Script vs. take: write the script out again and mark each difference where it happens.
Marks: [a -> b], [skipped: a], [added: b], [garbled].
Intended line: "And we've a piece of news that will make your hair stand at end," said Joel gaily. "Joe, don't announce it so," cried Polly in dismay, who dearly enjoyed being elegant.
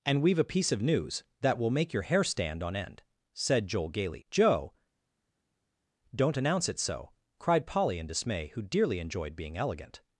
"And we've a piece of news that will make your hair stand [at -> on] end," said Joel gaily. "Joe, don't announce it so," cried Polly in dismay, who dearly enjoyed being elegant.